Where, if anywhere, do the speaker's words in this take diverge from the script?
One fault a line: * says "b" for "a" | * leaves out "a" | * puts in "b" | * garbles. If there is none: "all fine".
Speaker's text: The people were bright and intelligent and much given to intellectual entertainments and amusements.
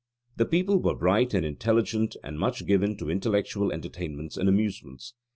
all fine